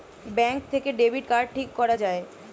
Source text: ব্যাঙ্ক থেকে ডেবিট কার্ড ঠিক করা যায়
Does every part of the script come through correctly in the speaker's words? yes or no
yes